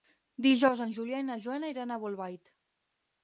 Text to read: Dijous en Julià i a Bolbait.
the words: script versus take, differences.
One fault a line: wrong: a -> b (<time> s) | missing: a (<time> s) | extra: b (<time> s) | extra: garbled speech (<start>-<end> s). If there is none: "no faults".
extra: na Joana iran (1.3 s)